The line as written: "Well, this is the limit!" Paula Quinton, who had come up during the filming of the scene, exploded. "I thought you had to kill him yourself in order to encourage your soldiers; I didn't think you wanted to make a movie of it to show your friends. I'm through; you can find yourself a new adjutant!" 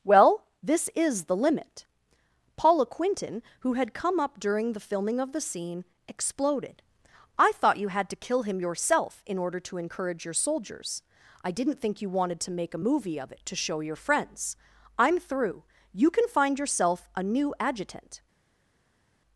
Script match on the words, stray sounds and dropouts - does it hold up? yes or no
yes